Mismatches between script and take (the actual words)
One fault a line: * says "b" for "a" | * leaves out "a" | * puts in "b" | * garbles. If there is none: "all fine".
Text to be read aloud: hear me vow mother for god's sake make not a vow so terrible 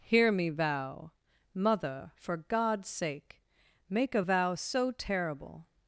* leaves out "not"